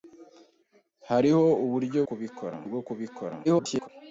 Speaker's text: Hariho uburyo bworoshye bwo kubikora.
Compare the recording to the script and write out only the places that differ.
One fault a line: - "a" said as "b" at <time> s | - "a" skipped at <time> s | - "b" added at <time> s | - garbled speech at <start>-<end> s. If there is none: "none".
- "bworoshye" said as "kubikora" at 2.1 s
- garbled speech at 3.4-3.9 s